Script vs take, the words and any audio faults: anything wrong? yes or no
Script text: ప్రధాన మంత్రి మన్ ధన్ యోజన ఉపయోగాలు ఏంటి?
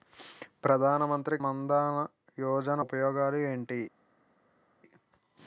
no